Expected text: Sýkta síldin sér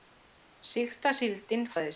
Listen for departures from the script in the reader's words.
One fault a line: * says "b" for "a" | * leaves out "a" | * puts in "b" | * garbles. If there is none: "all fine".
all fine